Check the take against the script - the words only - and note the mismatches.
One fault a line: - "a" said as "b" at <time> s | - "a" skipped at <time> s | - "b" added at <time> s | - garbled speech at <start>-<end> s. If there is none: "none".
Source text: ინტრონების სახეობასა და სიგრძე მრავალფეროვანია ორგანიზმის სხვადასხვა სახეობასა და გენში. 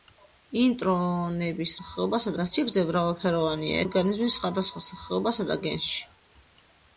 none